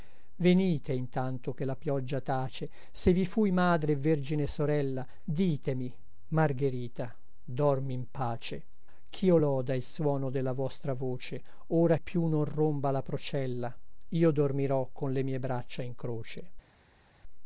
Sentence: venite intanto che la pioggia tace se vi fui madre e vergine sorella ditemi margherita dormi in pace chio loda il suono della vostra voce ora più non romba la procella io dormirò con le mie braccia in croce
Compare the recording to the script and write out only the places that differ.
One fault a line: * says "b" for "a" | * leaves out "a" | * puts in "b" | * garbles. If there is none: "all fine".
all fine